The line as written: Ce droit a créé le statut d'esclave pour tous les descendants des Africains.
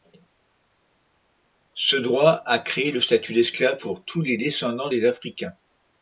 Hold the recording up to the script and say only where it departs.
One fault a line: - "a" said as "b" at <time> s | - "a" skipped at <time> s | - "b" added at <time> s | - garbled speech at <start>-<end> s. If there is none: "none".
none